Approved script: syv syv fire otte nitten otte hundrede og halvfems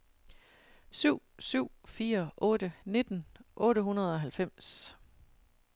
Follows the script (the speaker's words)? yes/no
yes